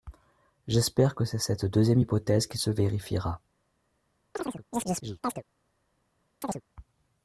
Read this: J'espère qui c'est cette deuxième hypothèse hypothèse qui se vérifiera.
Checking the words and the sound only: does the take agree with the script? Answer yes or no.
no